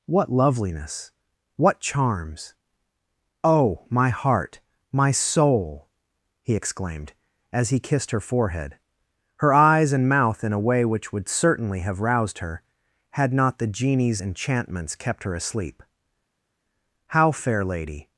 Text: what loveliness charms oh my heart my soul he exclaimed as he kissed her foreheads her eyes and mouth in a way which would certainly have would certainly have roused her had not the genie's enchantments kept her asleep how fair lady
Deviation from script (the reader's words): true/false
true